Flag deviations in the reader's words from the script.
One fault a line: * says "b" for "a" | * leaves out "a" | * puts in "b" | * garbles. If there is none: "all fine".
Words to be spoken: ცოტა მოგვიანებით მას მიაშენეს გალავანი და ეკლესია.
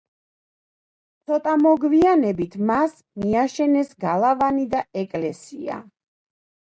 all fine